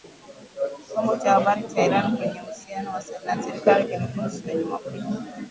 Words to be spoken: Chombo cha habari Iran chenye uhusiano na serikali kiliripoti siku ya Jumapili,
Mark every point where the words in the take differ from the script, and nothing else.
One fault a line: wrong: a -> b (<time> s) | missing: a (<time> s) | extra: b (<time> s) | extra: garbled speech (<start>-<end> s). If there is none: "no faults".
extra: cha (1.7 s)